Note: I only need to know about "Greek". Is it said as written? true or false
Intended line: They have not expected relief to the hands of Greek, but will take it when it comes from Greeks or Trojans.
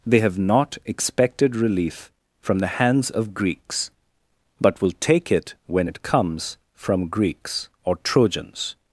false